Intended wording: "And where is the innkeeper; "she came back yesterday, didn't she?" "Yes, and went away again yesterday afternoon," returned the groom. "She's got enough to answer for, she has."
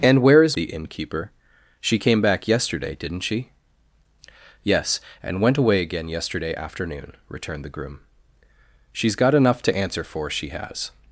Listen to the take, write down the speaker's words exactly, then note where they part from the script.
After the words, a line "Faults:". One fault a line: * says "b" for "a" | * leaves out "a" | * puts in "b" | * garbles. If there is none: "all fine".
"And where is the innkeeper; "she came back yesterday, didn't she?" "Yes, and went away again yesterday afternoon," returned the groom. "She's got enough to answer for, she has."
Faults:
all fine